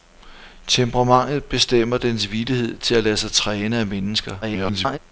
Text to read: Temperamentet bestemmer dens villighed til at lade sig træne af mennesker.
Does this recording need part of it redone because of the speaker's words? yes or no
yes